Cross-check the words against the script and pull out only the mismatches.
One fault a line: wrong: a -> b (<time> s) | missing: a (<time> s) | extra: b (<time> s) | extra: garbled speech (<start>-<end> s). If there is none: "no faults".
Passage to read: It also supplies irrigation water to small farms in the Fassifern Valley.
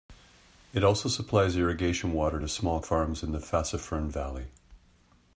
no faults